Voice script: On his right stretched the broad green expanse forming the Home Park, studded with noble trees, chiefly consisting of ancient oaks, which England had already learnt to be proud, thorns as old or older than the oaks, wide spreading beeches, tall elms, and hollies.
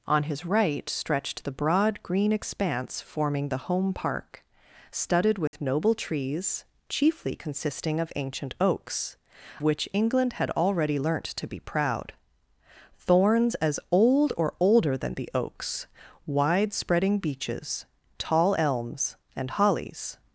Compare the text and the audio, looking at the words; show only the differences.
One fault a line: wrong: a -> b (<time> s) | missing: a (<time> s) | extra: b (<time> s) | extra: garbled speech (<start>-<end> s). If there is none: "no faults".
no faults